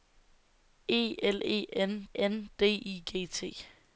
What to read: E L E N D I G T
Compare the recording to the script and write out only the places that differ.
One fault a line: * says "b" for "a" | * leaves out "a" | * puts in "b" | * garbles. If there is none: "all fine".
* puts in "N"